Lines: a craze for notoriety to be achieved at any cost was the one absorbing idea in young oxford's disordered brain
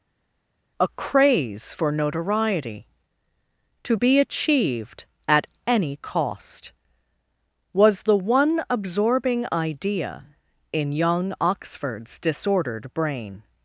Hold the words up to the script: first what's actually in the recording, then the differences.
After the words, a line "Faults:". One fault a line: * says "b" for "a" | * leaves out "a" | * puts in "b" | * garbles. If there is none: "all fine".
a craze for notoriety to be achieved at any cost was the one absorbing idea in young oxford's disordered brain
Faults:
all fine